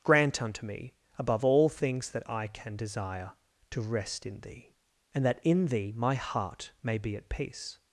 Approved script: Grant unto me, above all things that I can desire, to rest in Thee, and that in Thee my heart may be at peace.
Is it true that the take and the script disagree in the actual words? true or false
false